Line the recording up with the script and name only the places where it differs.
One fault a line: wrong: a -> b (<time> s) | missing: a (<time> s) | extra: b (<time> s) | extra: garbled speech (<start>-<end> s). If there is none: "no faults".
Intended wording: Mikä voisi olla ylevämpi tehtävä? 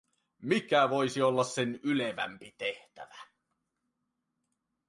extra: sen (1.4 s)